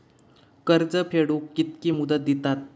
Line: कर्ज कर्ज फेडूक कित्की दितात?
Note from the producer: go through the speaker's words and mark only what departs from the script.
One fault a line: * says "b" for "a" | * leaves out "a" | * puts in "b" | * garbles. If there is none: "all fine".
* leaves out "कर्ज"
* puts in "मुदत"